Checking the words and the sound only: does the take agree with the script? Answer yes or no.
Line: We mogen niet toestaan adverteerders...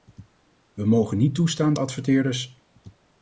yes